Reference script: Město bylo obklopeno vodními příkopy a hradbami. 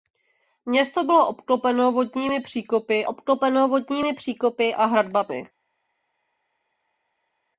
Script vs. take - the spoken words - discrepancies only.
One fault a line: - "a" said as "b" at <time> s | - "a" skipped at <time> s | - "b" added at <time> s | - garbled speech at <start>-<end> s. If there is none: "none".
- "obklopeno vodními příkopy" added at 3.1 s